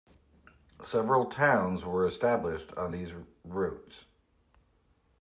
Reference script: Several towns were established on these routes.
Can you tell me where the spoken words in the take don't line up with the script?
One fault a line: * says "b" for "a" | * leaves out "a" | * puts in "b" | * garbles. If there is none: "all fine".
all fine